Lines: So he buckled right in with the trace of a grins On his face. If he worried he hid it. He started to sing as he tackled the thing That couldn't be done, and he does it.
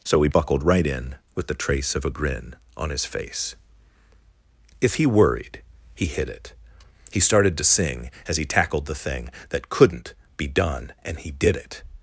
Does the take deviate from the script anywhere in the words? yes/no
yes